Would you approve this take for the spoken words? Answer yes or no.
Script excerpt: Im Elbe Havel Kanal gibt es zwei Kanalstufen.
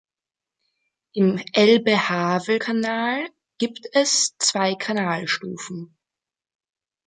yes